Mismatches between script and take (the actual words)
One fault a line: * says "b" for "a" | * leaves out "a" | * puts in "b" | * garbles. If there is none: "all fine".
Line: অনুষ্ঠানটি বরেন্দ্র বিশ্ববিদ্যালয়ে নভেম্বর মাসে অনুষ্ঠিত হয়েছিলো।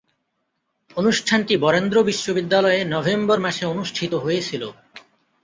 all fine